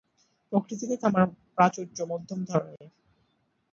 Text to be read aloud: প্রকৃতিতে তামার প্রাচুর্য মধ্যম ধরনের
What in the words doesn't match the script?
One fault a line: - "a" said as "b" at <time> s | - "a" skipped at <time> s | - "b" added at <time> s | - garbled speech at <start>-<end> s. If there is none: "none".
none